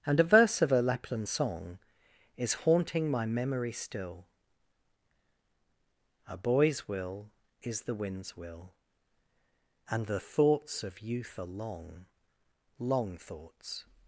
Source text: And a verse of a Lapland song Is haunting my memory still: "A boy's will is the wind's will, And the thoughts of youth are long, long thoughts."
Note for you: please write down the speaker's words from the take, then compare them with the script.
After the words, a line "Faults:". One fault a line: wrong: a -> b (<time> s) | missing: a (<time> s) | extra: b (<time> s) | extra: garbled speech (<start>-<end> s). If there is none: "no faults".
And a verse of a Lapland song Is haunting my memory still: "A boy's will is the wind's will, And the thoughts of youth are long, long thoughts."
Faults:
no faults